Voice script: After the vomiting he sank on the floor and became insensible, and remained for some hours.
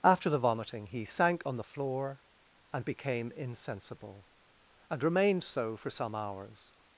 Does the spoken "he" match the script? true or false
true